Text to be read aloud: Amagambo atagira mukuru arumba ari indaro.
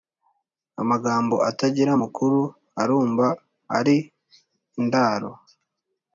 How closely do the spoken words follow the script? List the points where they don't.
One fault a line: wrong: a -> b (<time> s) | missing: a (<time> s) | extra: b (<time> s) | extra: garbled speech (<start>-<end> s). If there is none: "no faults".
no faults